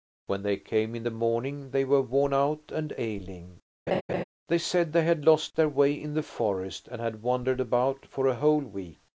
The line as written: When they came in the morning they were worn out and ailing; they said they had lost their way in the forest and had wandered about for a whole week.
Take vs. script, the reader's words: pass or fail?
pass